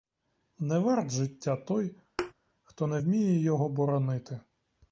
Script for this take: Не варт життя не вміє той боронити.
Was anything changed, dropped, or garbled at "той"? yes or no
yes